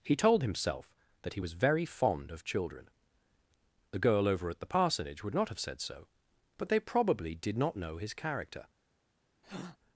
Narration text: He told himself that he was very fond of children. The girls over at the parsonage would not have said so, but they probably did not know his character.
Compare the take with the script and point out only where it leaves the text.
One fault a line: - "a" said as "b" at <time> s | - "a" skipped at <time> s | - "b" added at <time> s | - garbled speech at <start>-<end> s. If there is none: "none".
- "girls" said as "girl" at 4.0 s